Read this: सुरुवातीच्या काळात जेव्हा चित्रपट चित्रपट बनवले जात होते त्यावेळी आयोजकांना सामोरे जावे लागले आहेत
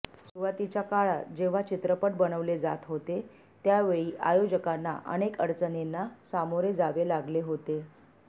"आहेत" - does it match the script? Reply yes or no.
no